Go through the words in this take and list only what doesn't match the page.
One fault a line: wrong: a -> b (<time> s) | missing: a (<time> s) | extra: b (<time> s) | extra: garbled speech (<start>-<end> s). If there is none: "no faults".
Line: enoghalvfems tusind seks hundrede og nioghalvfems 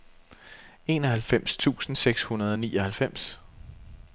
no faults